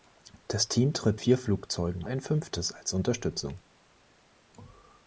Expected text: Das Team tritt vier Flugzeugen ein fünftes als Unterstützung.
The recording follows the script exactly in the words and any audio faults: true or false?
true